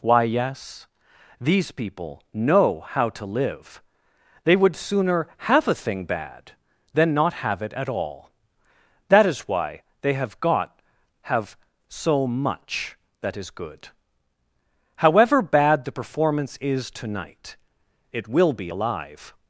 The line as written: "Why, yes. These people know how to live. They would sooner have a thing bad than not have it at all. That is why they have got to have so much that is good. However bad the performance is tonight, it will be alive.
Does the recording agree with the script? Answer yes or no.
no